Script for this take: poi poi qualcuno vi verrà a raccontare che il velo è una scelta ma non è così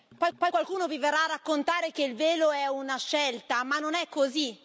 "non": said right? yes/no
yes